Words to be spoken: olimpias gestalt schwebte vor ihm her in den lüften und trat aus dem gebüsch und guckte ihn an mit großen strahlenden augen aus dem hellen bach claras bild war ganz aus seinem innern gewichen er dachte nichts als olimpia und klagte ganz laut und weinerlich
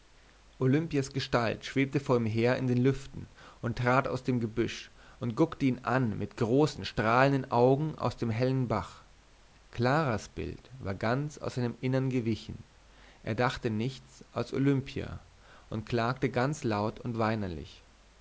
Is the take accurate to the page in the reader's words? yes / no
yes